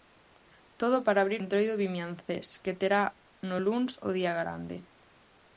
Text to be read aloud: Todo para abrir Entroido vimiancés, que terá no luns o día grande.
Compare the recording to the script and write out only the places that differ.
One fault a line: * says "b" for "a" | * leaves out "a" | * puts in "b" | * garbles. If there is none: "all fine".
all fine